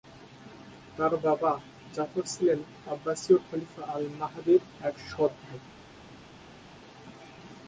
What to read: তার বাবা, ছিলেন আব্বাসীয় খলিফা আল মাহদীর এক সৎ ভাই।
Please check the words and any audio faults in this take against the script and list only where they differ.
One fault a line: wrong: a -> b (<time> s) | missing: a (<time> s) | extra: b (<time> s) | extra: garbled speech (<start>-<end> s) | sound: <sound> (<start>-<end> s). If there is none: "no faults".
extra: জাফর (2.0 s)